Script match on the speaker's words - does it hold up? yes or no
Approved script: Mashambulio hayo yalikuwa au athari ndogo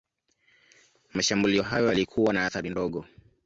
no